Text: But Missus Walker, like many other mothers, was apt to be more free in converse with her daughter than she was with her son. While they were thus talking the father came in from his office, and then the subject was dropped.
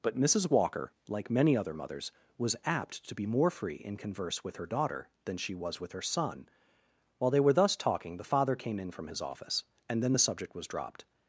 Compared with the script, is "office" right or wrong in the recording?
right